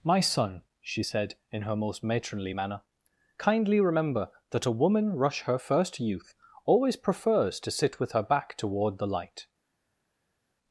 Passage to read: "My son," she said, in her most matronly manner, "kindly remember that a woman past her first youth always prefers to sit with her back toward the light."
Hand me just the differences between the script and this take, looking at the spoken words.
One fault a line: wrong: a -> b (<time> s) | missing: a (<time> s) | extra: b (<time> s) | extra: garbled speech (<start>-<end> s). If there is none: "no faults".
wrong: past -> rush (5.1 s)